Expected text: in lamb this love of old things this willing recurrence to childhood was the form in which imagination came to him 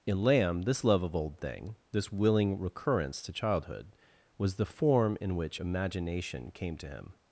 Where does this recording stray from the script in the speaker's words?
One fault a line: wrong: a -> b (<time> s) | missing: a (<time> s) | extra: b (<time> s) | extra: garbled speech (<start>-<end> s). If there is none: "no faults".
wrong: things -> thing (1.4 s)